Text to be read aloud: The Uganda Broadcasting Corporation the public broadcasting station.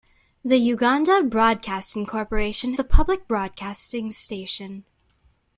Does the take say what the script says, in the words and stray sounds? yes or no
yes